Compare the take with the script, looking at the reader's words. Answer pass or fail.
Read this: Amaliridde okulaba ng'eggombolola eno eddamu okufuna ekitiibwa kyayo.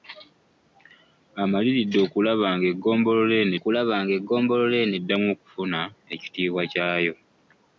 fail